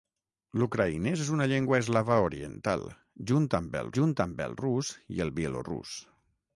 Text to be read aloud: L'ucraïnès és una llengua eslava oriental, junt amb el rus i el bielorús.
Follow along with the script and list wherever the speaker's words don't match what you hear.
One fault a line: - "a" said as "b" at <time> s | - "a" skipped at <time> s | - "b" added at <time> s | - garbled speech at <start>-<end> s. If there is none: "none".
- "junt amb el" added at 4.0 s